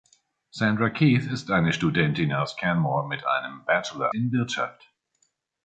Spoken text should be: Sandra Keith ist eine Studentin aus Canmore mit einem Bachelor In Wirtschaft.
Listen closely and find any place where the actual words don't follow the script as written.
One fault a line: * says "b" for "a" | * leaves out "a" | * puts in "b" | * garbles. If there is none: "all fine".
all fine